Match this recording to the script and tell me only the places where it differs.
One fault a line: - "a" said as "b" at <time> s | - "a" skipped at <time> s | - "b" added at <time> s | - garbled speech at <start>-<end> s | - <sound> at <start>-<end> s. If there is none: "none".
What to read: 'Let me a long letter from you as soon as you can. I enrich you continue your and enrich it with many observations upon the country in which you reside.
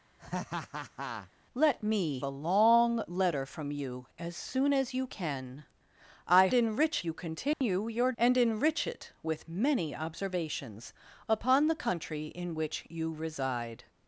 - laugh at 0.2-1.3 s
- dropout at 7.5-7.6 s